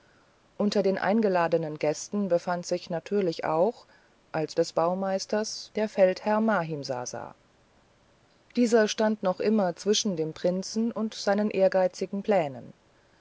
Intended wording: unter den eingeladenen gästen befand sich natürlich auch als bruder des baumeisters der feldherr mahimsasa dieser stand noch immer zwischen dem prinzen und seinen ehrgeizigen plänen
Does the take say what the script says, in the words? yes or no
no